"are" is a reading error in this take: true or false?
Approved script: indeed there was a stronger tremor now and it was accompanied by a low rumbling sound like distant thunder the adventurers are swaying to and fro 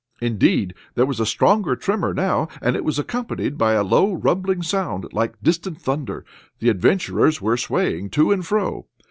true